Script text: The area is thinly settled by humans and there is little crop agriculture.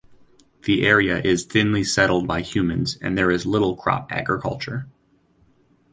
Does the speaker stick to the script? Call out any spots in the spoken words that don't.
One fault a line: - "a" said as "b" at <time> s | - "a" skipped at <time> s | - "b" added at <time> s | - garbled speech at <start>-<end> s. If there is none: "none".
none